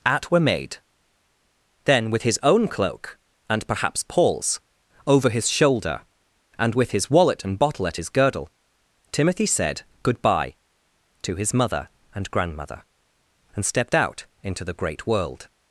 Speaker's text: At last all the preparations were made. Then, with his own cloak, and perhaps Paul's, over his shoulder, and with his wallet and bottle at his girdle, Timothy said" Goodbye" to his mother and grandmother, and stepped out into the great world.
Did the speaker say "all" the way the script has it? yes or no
no